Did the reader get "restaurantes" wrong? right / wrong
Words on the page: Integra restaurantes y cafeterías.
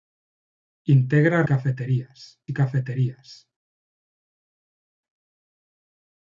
wrong